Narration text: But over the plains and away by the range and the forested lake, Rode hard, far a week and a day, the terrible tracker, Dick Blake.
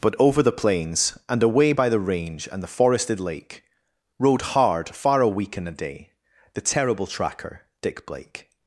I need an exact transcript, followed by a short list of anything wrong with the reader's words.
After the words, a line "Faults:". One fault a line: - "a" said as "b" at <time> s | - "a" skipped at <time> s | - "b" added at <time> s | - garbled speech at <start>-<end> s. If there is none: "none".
But over the plains and away by the range and the forested lake, Rode hard, far a week and a day, the terrible tracker, Dick Blake.
Faults:
none